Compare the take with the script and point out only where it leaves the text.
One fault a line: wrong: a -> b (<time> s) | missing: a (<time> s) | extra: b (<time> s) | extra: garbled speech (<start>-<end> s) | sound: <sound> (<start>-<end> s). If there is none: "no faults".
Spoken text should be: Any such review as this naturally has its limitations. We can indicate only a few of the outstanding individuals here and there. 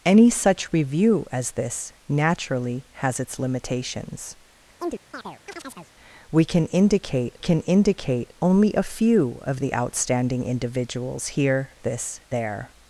sound: chirp (4.8-5.9 s)
extra: can indicate (7.4 s)
wrong: and -> this (11.8 s)